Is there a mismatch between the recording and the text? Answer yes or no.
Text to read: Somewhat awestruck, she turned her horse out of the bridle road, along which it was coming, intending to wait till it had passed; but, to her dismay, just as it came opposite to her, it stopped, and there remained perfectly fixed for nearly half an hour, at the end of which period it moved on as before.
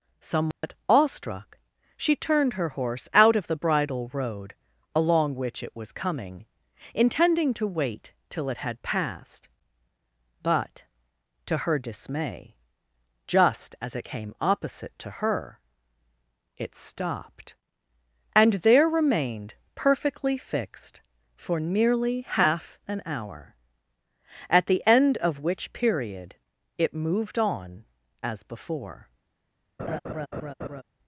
no